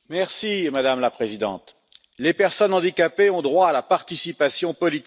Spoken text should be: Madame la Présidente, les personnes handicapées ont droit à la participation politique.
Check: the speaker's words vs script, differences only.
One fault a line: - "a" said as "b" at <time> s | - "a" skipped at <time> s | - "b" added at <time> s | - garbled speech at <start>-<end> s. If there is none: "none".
none